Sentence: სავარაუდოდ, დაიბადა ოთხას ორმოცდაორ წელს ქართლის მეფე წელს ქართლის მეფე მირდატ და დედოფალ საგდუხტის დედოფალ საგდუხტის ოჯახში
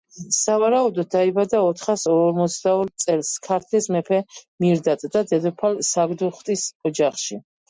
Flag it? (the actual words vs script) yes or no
yes